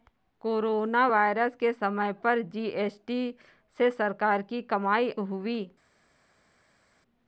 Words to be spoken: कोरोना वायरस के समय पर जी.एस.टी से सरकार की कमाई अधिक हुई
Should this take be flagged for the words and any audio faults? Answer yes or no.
yes